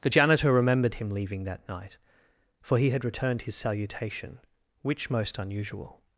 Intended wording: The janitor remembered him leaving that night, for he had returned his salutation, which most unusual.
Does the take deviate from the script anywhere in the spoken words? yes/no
no